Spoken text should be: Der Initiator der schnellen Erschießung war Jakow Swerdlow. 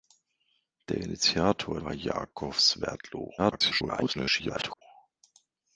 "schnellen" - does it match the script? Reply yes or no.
no